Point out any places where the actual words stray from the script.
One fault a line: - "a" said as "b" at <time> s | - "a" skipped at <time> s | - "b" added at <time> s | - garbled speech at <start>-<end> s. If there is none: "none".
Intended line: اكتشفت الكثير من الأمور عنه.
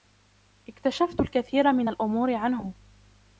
none